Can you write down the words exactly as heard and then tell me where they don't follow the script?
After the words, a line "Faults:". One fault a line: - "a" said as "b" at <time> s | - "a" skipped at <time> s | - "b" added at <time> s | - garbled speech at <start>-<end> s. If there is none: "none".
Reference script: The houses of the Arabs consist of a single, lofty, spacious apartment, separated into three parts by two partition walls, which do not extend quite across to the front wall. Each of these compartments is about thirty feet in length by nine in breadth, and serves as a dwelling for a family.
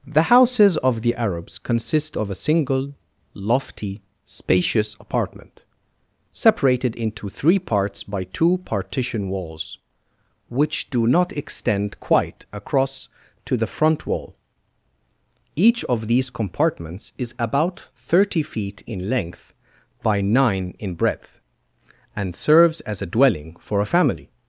The houses of the Arabs consist of a single, lofty, spacious apartment, separated into three parts by two partition walls, which do not extend quite across to the front wall. Each of these compartments is about thirty feet in length by nine in breadth, and serves as a dwelling for a family.
Faults:
none